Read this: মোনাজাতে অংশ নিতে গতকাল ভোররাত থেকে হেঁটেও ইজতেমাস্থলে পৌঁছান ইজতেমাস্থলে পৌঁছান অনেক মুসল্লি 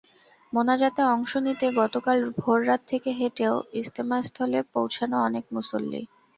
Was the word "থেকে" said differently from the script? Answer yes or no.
no